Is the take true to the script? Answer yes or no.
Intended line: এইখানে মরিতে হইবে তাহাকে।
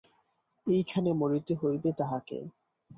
yes